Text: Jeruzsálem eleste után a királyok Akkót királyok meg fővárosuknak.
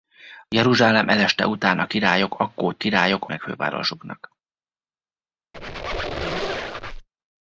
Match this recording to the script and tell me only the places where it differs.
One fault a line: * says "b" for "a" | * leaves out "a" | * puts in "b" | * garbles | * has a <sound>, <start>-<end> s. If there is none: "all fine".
* has a squeak, 5.5-7.1 s